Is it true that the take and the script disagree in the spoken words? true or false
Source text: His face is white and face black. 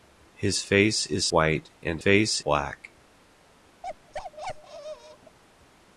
false